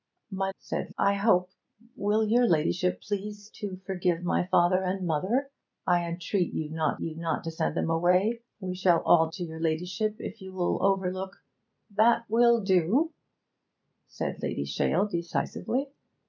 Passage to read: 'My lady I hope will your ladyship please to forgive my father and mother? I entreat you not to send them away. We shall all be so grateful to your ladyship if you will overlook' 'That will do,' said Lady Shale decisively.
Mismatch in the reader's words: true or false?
true